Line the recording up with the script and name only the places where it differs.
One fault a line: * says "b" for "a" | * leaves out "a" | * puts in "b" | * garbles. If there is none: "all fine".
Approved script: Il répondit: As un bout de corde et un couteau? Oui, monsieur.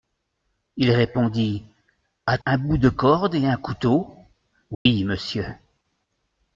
all fine